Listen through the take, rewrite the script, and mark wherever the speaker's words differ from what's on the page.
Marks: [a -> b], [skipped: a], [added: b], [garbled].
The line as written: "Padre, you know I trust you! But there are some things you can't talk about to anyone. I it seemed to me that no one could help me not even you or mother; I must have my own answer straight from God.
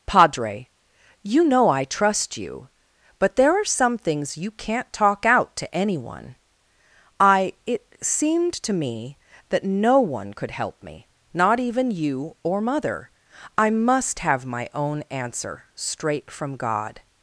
"Padre, you know I trust you! But there are some things you can't talk [about -> out] to anyone. I it seemed to me that no one could help me not even you or mother; I must have my own answer straight from God.